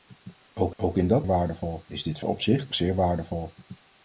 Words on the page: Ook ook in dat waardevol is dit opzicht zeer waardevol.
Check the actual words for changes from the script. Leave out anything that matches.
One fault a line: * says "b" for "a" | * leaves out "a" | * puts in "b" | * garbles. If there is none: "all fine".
all fine